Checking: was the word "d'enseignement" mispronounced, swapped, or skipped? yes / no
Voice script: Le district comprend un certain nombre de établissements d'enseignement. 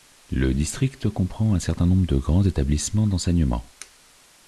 no